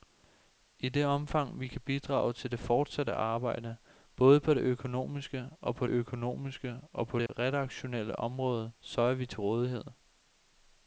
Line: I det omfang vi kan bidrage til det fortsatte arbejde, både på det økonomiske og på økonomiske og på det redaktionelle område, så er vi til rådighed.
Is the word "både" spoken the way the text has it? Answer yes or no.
yes